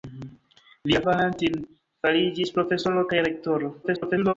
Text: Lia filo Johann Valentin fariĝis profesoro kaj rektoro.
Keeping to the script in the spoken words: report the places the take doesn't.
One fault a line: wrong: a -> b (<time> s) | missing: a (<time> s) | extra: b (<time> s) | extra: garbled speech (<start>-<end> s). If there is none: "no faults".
missing: filo Johann (1.0 s)
extra: garbled speech (3.8-4.3 s)